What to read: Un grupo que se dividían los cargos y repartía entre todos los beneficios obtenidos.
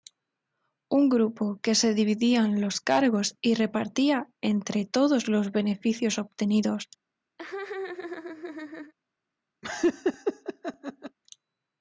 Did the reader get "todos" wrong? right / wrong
right